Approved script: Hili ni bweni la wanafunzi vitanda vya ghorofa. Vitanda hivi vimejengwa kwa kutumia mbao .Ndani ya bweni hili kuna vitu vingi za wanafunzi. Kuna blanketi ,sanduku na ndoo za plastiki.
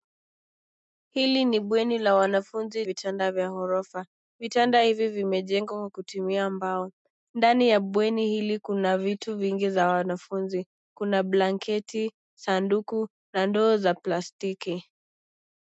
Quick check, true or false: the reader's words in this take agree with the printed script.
true